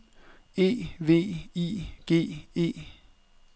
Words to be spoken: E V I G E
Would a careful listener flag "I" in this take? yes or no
no